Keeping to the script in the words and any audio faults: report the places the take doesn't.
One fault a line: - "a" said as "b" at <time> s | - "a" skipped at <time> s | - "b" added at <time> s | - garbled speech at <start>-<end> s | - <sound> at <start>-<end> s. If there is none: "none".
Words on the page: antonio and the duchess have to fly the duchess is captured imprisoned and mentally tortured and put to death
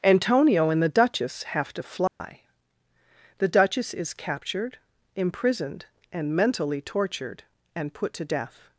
- dropout at 2.1-2.2 s